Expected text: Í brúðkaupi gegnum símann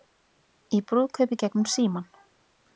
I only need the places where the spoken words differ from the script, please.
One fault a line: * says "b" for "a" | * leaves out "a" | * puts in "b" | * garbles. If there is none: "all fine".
all fine